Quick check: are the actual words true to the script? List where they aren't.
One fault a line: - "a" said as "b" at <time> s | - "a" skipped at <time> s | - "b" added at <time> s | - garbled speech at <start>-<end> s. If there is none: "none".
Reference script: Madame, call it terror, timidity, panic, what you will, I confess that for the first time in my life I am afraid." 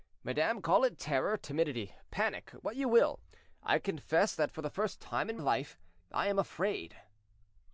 - "my" skipped at 5.4 s